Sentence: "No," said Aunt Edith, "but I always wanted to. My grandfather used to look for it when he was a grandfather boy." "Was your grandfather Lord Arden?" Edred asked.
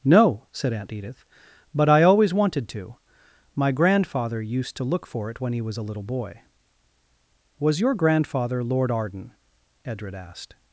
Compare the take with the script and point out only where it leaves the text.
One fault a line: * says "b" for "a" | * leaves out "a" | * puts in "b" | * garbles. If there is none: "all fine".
* says "little" for "grandfather"